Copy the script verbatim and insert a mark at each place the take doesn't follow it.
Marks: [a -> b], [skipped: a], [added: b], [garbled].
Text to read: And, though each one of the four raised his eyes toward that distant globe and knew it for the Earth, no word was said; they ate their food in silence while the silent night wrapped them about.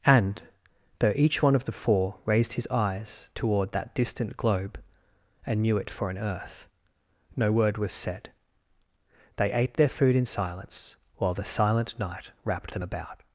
And, though each one of the four raised his eyes toward that distant globe and knew it for [the -> an] Earth, no word was said; they ate their food in silence while the silent night wrapped them about.